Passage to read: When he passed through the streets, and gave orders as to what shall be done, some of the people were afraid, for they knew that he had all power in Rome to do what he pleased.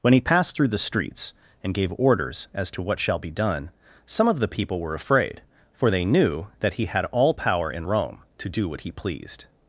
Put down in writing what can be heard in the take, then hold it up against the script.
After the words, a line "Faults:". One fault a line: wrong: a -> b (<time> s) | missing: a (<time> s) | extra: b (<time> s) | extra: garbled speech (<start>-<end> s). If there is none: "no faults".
When he passed through the streets, and gave orders as to what shall be done, some of the people were afraid, for they knew that he had all power in Rome to do what he pleased.
Faults:
no faults